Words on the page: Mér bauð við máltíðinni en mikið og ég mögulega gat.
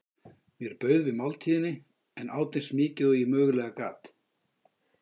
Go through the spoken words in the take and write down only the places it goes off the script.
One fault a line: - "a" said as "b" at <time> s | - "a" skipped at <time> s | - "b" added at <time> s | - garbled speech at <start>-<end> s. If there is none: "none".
- "át eins" added at 2.4 s